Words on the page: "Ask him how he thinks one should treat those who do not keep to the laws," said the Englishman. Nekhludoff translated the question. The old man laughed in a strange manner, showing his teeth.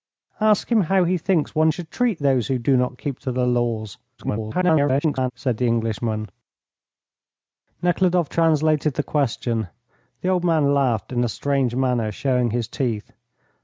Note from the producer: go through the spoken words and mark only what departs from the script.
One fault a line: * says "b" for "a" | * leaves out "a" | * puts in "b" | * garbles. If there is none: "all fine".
* garbles